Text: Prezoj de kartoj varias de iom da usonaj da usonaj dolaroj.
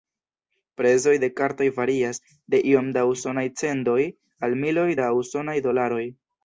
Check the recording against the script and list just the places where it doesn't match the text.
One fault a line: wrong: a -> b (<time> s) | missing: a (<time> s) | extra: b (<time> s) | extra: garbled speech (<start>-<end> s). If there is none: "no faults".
extra: cendoj al miloj (3.6 s)